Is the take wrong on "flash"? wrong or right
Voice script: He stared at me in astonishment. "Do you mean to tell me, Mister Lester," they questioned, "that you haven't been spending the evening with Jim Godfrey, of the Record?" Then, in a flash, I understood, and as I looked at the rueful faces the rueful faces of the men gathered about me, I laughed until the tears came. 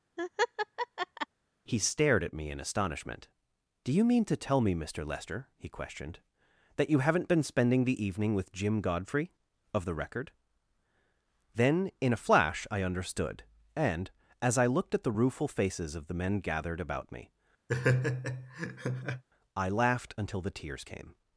right